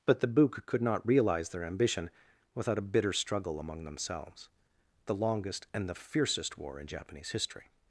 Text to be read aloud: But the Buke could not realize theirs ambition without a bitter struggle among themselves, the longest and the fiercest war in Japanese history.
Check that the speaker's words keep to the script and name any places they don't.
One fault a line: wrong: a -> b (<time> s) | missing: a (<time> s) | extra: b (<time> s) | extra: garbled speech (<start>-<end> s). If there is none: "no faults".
wrong: theirs -> their (1.5 s)